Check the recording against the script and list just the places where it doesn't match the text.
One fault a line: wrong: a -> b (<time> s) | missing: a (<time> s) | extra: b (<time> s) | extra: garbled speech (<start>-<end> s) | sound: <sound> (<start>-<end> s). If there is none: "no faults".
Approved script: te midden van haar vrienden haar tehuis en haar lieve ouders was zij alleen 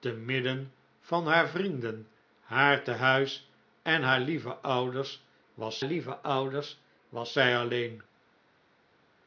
extra: lieve ouders was (5.8 s)